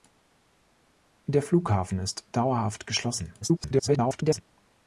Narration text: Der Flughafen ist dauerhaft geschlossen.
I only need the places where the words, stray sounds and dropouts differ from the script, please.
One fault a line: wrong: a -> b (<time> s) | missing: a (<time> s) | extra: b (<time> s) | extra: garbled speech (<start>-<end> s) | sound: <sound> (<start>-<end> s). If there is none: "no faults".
extra: garbled speech (3.4-4.4 s)